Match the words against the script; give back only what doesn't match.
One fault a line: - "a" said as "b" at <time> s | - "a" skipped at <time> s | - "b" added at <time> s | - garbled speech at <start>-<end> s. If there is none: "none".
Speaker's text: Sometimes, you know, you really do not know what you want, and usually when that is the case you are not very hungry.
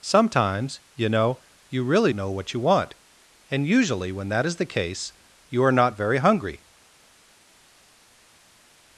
- "do not" skipped at 2.1 s